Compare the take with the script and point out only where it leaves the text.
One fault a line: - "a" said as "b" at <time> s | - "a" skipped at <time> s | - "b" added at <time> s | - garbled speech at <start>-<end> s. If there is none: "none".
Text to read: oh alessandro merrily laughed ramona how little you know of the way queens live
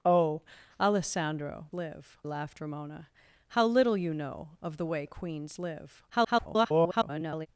- "merrily" said as "live" at 1.7 s
- garbled speech at 6.1-7.5 s